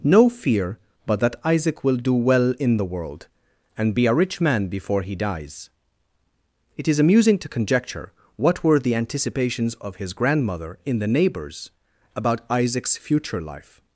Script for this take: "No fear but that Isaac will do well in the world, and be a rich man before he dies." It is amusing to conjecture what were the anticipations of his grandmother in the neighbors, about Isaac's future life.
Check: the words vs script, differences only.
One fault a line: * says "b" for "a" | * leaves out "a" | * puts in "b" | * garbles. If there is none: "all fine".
all fine